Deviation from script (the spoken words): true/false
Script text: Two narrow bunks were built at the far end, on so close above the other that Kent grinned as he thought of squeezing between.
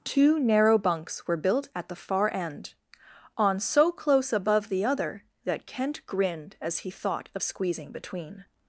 false